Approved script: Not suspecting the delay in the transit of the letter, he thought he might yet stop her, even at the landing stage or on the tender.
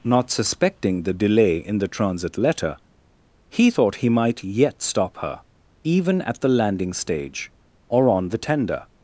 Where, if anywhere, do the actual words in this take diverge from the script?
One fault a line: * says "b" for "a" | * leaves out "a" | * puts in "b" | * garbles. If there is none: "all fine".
* leaves out "of the"